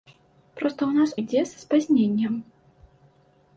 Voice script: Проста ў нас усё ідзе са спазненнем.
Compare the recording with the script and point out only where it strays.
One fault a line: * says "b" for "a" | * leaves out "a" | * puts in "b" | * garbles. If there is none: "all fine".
* leaves out "усё"